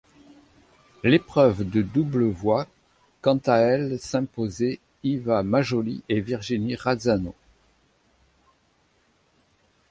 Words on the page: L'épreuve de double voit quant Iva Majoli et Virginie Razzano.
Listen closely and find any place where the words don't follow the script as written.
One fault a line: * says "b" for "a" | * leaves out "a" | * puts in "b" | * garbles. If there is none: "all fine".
* puts in "à elle s'imposer"